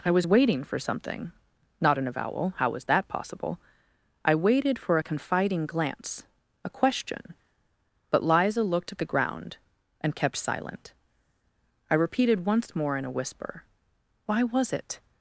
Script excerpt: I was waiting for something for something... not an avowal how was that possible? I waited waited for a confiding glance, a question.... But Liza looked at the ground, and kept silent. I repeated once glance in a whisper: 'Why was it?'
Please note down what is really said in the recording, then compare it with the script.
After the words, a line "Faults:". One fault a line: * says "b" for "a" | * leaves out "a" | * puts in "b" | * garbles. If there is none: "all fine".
I was waiting for something... not an avowal how was that possible? I waited for a confiding glance, a question.... But Liza looked at the ground, and kept silent. I repeated once more in a whisper: 'Why was it?'
Faults:
* leaves out "for something"
* leaves out "waited"
* says "more" for "glance"